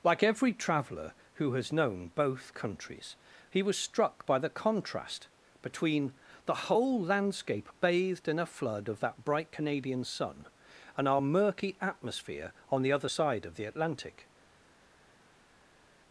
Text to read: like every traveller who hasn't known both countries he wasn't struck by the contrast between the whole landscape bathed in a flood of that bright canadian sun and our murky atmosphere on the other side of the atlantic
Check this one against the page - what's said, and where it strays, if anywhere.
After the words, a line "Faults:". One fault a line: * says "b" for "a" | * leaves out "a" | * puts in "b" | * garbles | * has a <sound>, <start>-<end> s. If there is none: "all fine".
like every traveller who has known both countries he was struck by the contrast between the whole landscape bathed in a flood of that bright canadian sun and our murky atmosphere on the other side of the atlantic
Faults:
* says "has" for "hasn't"
* says "was" for "wasn't"